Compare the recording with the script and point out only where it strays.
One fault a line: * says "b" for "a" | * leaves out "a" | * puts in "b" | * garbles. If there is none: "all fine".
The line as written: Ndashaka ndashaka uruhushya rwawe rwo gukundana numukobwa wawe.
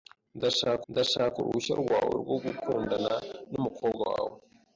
all fine